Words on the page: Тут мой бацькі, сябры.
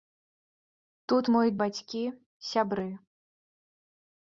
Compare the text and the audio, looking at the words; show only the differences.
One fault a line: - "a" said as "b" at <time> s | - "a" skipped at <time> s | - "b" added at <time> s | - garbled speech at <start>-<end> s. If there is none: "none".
none